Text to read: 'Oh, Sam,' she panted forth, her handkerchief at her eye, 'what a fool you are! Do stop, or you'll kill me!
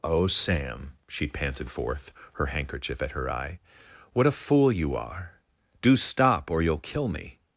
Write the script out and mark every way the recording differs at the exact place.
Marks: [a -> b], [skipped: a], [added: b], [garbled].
'Oh, Sam,' she panted forth, her handkerchief at her eye, 'what a fool you are! Do stop, or you'll kill me!